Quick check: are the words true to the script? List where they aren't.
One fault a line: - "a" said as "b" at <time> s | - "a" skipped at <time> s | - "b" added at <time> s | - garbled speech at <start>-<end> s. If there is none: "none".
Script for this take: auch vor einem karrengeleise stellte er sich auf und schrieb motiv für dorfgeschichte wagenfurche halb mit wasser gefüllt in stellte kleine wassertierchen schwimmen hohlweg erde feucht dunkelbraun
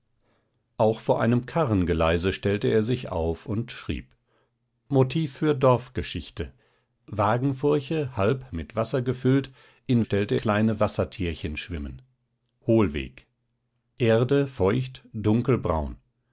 none